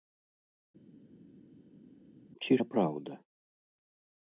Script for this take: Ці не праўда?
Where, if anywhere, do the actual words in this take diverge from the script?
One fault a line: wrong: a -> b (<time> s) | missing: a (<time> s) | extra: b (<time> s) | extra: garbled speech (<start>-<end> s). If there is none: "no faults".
no faults